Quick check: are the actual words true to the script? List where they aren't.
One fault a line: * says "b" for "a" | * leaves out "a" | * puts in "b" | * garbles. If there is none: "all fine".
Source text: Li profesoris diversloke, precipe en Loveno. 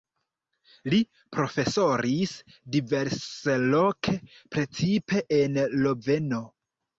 all fine